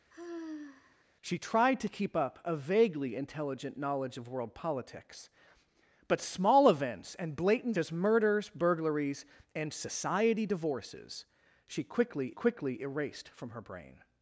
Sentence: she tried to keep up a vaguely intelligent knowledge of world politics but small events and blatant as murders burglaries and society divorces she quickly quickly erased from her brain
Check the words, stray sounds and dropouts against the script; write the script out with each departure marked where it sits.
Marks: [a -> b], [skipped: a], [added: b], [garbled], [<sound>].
[sigh] she tried to keep up a vaguely intelligent knowledge of world politics but small events and blatant as murders burglaries and society divorces she quickly quickly erased from her brain